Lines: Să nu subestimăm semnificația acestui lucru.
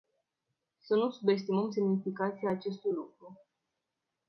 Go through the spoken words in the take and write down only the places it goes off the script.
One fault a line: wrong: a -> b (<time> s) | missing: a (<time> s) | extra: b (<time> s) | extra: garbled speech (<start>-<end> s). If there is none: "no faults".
no faults